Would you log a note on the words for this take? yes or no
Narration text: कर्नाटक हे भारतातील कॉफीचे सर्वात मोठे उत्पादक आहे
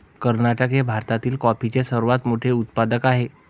no